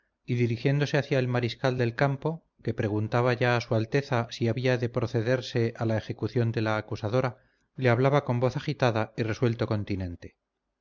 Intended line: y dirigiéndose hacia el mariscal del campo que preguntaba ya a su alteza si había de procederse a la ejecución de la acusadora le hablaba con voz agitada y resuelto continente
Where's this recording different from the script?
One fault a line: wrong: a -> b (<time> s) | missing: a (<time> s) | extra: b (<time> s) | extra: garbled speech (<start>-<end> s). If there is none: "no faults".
no faults